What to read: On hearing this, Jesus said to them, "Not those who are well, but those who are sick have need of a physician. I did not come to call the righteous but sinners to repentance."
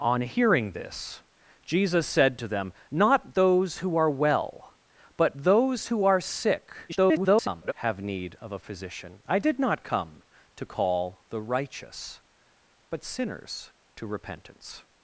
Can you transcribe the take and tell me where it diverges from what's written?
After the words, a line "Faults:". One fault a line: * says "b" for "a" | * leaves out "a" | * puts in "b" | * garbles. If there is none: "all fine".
On hearing this, Jesus said to them, "Not those who are well, but those who are sick [garbled] have need of a physician. I did not come to call the righteous but sinners to repentance."
Faults:
* garbles